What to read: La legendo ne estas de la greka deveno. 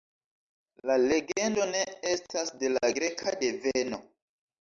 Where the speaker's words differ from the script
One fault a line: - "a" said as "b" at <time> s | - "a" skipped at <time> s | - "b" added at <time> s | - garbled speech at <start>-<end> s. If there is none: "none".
none